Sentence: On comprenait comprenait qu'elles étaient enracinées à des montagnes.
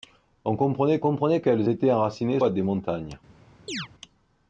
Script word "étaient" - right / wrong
right